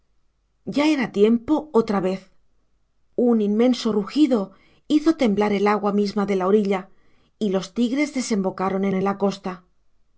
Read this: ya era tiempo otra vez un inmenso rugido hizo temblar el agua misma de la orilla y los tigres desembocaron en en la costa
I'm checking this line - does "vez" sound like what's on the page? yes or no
yes